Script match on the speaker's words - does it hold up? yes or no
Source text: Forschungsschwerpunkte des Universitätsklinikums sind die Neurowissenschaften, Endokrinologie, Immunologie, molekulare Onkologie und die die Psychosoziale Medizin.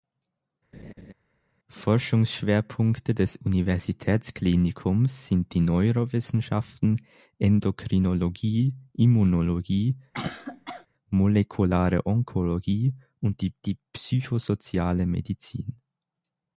yes